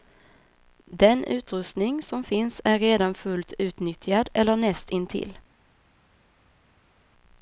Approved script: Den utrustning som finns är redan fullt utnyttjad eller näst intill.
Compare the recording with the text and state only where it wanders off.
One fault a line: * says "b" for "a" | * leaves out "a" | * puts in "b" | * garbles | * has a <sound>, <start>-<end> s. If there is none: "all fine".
all fine